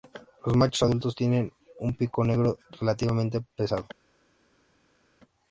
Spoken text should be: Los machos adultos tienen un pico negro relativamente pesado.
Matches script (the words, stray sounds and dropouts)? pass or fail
pass